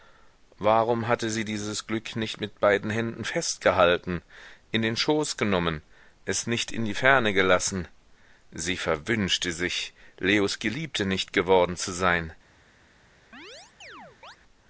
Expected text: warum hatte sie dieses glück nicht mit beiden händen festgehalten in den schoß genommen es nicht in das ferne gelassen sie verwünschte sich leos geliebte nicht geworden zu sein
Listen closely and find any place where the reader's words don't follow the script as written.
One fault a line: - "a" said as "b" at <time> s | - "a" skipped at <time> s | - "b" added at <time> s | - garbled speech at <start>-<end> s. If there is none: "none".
- "das" said as "die" at 6.8 s